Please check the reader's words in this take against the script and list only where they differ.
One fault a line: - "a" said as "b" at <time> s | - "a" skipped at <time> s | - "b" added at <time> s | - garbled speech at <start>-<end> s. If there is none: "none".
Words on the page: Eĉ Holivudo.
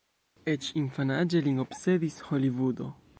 - "infanaĝe lin obsedis" added at 0.8 s